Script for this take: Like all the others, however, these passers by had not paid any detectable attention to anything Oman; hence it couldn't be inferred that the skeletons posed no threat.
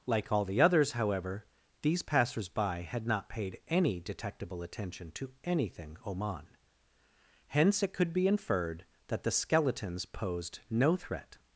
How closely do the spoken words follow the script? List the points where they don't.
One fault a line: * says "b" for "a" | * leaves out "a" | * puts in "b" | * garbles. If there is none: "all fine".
* says "could" for "couldn't"